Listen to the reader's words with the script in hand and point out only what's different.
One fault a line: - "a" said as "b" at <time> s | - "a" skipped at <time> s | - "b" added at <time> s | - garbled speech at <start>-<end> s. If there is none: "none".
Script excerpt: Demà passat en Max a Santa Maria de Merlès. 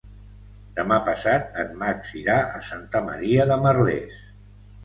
- "irà" added at 2.2 s